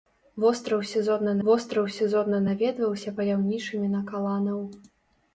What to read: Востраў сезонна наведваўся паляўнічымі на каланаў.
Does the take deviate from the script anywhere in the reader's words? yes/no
yes